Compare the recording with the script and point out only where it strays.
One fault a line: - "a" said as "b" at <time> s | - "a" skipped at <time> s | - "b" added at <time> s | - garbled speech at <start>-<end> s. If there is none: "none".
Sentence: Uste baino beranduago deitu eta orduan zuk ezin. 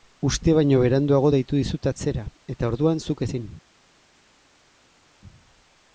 - "dizut atzera" added at 1.6 s